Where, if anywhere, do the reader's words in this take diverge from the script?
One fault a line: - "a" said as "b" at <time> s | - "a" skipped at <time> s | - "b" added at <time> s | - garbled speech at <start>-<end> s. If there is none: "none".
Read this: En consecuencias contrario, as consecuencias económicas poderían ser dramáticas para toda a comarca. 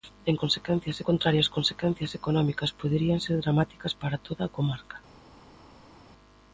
none